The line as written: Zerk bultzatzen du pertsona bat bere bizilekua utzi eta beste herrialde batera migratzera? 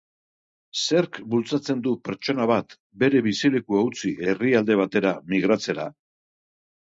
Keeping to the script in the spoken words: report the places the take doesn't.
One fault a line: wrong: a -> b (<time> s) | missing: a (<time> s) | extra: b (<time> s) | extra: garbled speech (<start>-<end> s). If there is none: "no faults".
missing: eta beste (4.1 s)